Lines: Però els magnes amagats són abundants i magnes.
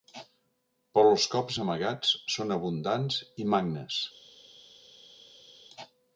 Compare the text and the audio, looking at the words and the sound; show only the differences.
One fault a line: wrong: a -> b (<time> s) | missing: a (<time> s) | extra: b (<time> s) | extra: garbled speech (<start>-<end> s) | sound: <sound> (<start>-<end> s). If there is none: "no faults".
wrong: magnes -> cops (1.3 s)